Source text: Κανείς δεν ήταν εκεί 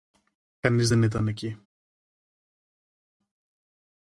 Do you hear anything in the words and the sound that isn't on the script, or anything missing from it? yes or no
no